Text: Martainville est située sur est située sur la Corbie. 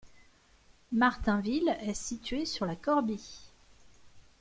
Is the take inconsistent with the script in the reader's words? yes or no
yes